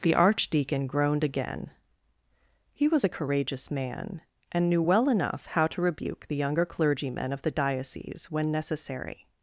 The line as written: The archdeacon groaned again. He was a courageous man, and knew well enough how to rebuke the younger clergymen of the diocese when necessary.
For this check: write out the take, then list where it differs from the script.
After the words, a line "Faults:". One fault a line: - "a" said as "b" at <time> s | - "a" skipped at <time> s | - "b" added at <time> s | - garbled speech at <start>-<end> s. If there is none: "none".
The archdeacon groaned again. He was a courageous man, and knew well enough how to rebuke the younger clergymen of the diocese when necessary.
Faults:
none